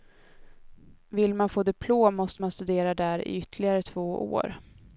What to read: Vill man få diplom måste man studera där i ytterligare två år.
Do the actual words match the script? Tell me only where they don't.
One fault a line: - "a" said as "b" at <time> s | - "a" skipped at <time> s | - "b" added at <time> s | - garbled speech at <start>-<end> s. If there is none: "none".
none